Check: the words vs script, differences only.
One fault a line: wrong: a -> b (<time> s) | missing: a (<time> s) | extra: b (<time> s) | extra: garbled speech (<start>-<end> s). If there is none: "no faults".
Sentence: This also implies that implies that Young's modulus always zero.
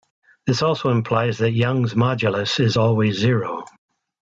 missing: implies that (1.5 s)
extra: is (2.6 s)